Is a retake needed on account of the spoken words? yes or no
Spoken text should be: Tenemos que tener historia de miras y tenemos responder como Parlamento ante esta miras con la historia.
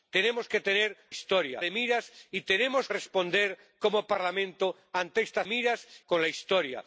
no